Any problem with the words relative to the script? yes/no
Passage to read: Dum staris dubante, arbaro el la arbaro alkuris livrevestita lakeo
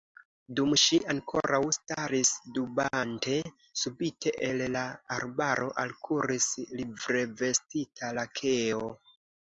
yes